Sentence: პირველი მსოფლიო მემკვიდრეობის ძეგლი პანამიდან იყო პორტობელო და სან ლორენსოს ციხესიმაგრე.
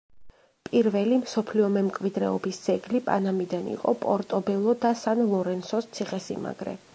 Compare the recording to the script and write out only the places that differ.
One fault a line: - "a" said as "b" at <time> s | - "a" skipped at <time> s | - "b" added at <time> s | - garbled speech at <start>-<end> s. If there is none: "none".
none